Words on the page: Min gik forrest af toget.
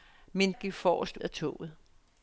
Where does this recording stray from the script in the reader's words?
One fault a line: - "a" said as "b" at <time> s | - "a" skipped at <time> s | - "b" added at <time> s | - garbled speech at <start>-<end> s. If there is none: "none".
none